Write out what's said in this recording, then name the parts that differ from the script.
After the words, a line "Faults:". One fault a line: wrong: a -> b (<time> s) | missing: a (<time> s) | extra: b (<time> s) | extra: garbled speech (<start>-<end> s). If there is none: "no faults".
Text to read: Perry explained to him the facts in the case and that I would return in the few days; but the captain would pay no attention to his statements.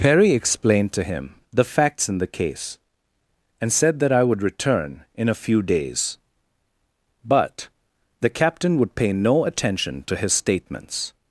Perry explained to him the facts in the case and said that I would return in a few days; but the captain would pay no attention to his statements.
Faults:
extra: said (3.7 s)
wrong: the -> a (5.3 s)